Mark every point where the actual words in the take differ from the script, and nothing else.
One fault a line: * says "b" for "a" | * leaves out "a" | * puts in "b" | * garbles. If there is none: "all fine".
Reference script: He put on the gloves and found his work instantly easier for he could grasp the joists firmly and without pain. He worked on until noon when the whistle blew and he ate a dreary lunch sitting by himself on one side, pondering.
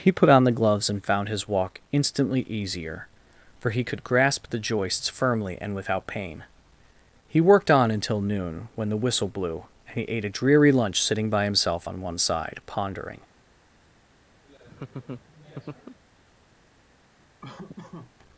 * says "walk" for "work"